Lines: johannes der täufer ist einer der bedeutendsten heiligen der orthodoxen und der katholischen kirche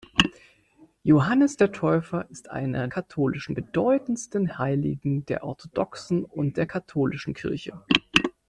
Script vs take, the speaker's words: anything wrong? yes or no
yes